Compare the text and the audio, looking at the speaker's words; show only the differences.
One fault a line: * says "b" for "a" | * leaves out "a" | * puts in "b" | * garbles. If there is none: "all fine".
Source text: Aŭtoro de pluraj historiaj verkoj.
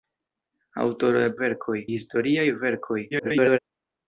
* says "verkoj" for "pluraj"
* garbles